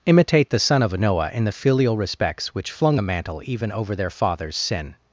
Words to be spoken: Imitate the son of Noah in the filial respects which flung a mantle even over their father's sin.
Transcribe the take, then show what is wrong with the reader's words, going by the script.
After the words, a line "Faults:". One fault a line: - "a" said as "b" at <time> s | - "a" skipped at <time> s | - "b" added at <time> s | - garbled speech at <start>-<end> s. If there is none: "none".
Imitate the son of Noah in the filial respects which flung a mantle even over their father's sin.
Faults:
none